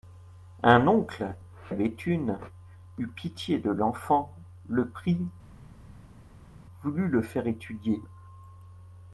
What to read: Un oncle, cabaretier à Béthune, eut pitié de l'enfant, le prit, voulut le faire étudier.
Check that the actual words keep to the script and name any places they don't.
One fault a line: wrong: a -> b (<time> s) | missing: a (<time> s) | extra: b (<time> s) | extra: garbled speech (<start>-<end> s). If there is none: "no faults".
missing: cabaretier (1.4 s)